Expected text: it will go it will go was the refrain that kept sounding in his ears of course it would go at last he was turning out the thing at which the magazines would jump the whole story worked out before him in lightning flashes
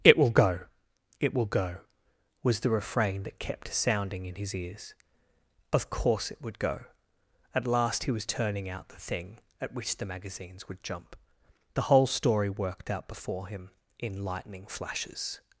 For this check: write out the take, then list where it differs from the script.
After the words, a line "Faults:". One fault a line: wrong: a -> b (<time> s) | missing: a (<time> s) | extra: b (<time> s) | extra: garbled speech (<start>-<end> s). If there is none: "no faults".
it will go it will go was the refrain that kept sounding in his ears of course it would go at last he was turning out the thing at which the magazines would jump the whole story worked out before him in lightning flashes
Faults:
no faults